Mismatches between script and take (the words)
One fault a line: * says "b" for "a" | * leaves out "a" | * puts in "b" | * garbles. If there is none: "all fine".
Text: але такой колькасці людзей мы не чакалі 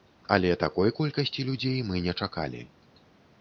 all fine